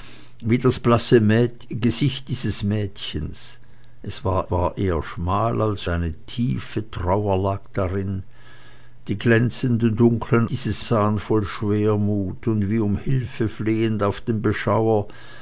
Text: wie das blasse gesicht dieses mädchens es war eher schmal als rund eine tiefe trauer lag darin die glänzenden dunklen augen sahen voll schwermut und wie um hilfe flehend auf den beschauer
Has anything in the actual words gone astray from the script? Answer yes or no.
yes